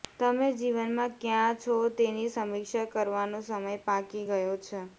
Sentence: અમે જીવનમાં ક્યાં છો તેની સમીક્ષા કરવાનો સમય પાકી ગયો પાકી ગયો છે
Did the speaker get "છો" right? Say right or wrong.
right